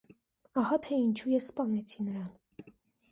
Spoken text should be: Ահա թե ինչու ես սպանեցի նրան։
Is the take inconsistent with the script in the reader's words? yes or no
no